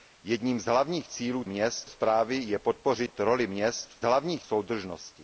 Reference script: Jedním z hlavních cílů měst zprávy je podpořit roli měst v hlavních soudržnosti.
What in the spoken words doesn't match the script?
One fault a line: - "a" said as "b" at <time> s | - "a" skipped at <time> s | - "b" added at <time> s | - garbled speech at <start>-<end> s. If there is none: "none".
none